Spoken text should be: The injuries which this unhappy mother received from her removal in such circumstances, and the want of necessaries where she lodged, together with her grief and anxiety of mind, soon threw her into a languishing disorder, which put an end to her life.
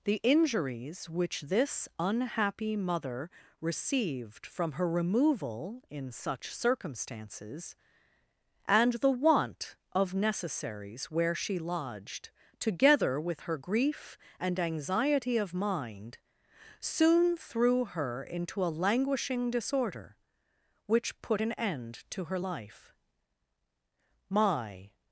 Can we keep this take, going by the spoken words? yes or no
no